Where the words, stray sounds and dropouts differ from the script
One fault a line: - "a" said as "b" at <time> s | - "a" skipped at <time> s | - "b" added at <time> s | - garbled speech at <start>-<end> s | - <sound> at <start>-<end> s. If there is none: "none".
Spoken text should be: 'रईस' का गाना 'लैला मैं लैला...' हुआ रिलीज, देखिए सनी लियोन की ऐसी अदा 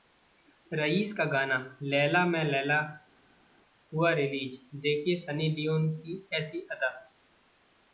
none